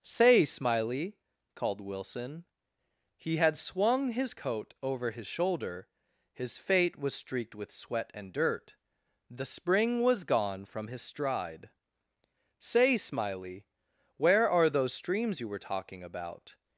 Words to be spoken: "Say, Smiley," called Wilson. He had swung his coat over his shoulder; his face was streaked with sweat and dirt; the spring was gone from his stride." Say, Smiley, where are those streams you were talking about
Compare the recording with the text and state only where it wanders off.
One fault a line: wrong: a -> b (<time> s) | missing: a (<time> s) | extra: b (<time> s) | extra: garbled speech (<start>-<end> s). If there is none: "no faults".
wrong: face -> fate (6.6 s)